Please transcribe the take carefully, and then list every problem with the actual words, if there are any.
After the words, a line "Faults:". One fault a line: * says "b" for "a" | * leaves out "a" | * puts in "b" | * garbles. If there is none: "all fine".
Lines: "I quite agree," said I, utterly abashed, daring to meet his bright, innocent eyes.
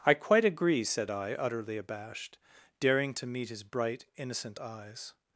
"I quite agree," said I, utterly abashed, daring to meet his bright, innocent eyes.
Faults:
all fine